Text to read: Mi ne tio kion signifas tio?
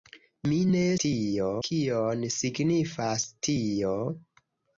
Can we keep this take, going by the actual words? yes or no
yes